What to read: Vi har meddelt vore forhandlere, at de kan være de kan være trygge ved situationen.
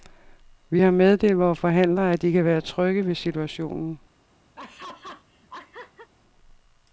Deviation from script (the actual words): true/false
true